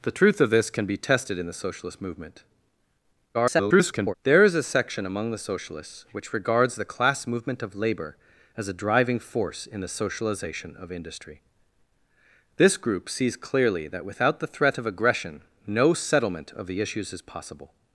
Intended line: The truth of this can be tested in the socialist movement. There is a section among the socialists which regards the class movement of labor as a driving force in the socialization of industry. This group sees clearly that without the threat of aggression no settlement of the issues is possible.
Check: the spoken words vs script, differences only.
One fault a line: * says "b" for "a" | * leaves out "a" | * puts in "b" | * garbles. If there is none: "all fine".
* garbles